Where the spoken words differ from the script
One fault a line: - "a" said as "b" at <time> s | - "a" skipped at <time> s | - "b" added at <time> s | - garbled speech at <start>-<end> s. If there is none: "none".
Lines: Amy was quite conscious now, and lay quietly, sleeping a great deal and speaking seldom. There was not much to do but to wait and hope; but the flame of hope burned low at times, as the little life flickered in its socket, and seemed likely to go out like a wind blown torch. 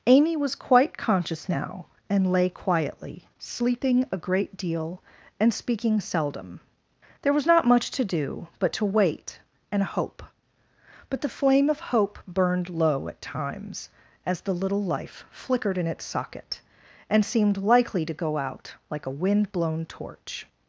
none